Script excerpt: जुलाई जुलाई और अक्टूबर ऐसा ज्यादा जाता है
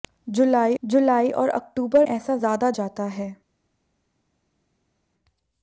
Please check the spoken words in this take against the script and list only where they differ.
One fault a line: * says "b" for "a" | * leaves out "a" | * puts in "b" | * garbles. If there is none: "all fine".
all fine